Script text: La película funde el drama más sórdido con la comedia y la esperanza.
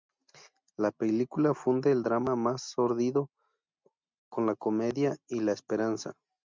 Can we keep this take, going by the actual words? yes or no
yes